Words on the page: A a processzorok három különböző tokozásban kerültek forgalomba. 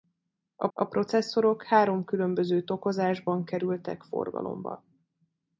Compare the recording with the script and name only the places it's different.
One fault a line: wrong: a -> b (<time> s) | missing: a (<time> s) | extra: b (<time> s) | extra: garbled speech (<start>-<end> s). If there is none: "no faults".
no faults